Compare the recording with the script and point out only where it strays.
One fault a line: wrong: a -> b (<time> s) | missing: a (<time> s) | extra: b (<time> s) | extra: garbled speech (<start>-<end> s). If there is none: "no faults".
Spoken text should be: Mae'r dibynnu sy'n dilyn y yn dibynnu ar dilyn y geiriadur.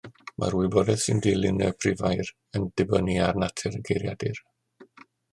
wrong: dibynnu -> wybodaeth (0.6 s)
extra: prifair (1.8 s)
wrong: dilyn -> natur (3.4 s)